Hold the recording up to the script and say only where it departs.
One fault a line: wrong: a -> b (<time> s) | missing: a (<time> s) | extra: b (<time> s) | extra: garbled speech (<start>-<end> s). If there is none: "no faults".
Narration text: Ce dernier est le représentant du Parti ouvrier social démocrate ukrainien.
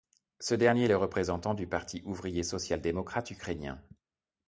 no faults